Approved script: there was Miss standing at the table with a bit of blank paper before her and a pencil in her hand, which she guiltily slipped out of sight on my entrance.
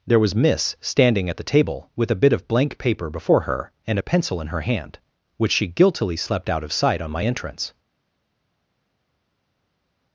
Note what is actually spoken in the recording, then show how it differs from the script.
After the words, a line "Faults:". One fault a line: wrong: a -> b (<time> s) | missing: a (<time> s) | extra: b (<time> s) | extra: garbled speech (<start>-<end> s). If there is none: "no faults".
there was Miss standing at the table with a bit of blank paper before her and a pencil in her hand, which she guiltily slept out of sight on my entrance.
Faults:
wrong: slipped -> slept (6.2 s)